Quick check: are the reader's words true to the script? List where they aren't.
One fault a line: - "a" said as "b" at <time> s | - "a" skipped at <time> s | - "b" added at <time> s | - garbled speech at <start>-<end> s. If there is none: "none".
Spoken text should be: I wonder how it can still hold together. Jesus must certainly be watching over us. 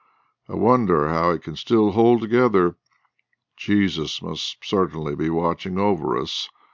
none